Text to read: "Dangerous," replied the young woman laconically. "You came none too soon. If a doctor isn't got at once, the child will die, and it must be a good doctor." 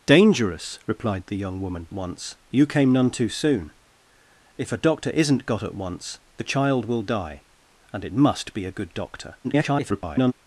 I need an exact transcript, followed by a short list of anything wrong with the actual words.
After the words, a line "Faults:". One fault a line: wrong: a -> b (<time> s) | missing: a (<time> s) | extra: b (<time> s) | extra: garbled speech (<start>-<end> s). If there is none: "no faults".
"Dangerous," replied the young woman once. "You came none too soon. If a doctor isn't got at once, the child will die, and it must be a good doctor." [garbled]
Faults:
wrong: laconically -> once (1.9 s)
extra: garbled speech (9.4-10.3 s)